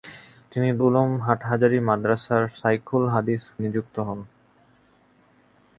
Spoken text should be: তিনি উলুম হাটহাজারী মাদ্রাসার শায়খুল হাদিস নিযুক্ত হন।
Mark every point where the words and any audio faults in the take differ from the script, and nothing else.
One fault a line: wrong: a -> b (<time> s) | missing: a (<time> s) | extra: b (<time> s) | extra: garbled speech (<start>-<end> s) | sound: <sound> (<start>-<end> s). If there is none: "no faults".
no faults